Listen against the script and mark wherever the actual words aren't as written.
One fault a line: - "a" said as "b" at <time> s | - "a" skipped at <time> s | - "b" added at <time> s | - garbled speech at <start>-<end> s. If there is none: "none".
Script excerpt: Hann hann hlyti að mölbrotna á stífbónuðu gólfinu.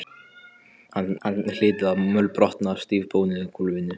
none